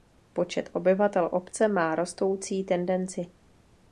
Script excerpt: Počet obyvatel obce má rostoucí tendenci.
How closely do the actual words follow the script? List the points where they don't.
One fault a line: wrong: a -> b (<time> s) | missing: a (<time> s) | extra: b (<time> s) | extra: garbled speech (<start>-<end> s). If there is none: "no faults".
no faults